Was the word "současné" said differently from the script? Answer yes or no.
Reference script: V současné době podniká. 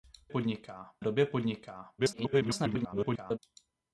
yes